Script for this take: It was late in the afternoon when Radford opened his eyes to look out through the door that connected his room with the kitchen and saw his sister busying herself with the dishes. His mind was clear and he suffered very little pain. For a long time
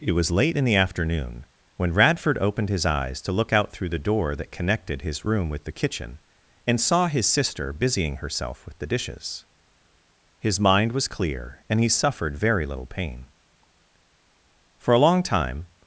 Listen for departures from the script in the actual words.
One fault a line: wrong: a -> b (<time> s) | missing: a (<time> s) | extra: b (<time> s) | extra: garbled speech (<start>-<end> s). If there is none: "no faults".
no faults